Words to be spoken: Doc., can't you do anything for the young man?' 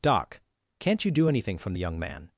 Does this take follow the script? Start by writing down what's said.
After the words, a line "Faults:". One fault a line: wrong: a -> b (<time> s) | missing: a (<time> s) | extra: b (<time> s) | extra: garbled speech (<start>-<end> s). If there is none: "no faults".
Doc., can't you do anything from the young man?'
Faults:
wrong: for -> from (1.6 s)